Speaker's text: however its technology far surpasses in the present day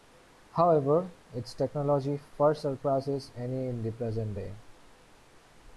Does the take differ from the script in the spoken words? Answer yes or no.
yes